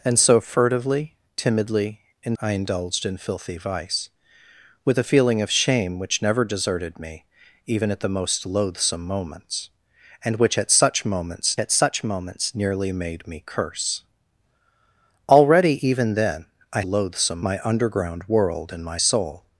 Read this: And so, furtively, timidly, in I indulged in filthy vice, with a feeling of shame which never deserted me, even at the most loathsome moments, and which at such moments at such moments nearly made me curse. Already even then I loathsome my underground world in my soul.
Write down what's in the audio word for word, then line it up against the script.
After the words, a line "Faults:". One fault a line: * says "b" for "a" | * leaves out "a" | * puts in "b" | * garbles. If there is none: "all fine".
And so, furtively, timidly, in I indulged in filthy vice, with a feeling of shame which never deserted me, even at the most loathsome moments, and which at such moments at such moments nearly made me curse. Already even then I loathsome my underground world in my soul.
Faults:
all fine